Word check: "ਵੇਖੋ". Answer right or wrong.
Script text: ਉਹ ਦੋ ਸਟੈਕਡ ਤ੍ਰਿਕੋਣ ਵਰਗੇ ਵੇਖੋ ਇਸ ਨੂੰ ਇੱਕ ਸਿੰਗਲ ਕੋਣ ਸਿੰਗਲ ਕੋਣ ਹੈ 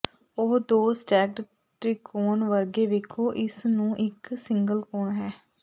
right